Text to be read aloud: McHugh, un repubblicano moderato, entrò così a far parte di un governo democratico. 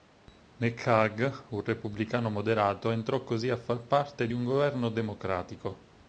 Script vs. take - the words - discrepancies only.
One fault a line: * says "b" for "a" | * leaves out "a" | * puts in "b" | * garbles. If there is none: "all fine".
all fine